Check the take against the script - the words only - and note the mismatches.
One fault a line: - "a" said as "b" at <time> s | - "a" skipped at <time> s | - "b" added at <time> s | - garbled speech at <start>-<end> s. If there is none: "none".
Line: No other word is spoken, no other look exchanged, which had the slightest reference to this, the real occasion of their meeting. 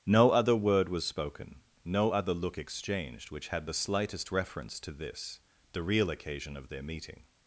- "is" said as "was" at 0.9 s